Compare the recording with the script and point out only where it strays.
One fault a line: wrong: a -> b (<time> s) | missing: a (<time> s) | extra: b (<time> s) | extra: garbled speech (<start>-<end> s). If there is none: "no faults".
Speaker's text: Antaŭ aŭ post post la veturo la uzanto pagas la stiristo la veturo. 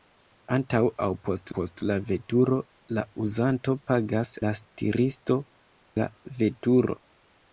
no faults